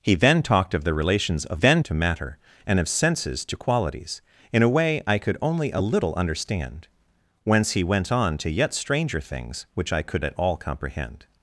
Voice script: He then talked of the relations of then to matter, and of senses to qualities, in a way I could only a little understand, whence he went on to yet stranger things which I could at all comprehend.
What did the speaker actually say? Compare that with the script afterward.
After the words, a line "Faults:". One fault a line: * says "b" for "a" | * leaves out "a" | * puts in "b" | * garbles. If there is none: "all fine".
He then talked of the relations of then to matter, and of senses to qualities, in a way I could only a little understand, whence he went on to yet stranger things which I could at all comprehend.
Faults:
all fine